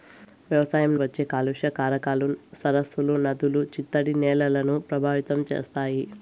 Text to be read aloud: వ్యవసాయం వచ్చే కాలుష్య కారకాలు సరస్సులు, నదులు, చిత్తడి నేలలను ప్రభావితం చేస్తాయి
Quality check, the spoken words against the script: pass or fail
pass